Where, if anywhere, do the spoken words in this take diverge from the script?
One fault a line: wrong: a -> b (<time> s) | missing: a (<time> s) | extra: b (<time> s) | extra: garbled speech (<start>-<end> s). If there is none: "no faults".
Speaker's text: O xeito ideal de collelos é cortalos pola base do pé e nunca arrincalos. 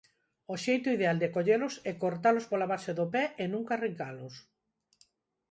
no faults